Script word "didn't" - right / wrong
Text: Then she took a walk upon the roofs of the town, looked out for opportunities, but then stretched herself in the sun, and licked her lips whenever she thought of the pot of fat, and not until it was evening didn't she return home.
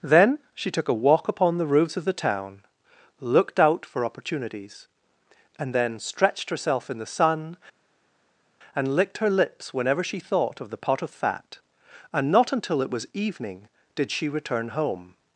wrong